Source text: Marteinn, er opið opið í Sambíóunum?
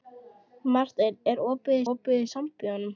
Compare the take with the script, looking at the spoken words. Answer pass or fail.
pass